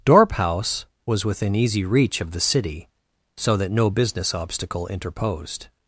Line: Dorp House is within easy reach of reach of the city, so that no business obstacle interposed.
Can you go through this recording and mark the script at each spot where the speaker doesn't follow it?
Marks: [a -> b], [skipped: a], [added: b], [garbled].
Dorp House [is -> was] within easy reach of [skipped: reach of] the city, so that no business obstacle interposed.